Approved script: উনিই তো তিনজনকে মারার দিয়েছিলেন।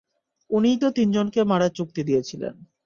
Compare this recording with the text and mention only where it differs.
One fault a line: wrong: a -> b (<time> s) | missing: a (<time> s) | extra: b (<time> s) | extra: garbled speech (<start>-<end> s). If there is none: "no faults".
extra: চুক্তি (1.8 s)